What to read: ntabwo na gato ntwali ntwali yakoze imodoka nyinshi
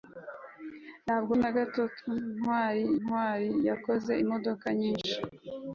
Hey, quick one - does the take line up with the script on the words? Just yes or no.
yes